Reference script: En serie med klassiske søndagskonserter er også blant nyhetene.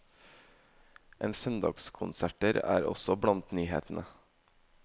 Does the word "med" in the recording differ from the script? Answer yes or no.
yes